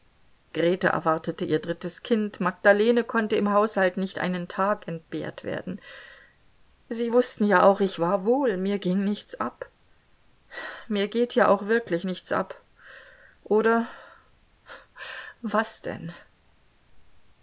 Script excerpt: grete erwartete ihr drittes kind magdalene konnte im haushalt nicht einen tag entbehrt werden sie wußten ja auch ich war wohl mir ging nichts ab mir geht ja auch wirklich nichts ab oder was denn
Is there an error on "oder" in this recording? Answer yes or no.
no